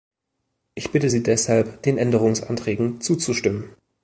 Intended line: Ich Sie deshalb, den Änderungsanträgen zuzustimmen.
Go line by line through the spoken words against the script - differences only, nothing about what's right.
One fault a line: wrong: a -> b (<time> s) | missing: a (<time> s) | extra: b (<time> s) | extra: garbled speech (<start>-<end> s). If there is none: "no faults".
extra: bitte (0.9 s)